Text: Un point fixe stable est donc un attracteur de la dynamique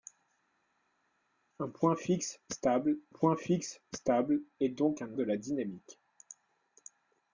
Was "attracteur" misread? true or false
true